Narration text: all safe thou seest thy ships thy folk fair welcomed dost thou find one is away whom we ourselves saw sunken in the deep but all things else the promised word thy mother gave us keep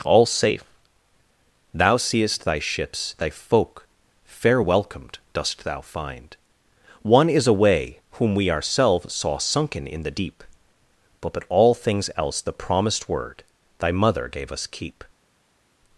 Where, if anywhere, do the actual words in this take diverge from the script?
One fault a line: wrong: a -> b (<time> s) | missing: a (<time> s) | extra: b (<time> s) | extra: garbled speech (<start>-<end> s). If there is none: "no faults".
extra: but (11.3 s)